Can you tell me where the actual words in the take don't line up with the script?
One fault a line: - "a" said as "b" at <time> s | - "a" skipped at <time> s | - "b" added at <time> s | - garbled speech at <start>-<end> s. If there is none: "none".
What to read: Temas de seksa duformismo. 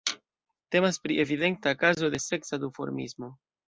- "pri evidenta kazo" added at 1.1 s